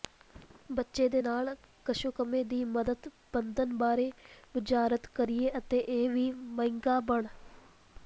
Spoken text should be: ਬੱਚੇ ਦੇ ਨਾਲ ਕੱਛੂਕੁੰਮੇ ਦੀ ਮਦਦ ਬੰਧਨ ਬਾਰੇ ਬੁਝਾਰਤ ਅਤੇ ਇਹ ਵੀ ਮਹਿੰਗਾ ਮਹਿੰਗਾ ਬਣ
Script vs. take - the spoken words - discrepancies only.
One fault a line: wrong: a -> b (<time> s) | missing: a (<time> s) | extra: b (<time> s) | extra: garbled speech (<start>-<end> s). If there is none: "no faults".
extra: ਕਰੀਏ (5.1 s)
missing: ਮਹਿੰਗਾ (7.0 s)